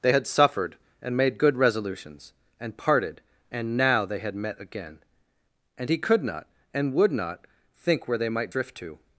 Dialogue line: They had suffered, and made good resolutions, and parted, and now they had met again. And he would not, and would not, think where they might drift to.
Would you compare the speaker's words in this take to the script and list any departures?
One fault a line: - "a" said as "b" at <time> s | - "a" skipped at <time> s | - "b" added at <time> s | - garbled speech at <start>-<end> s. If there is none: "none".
- "would" said as "could" at 6.0 s